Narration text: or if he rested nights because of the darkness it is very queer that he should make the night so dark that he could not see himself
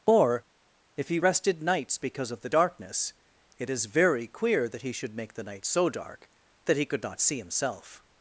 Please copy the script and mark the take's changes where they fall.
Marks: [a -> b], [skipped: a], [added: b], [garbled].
or if he rested nights because of the darkness it is very queer that he should make the night so dark that he could not see himself